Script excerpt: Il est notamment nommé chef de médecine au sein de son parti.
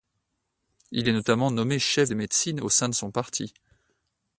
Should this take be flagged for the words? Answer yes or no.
no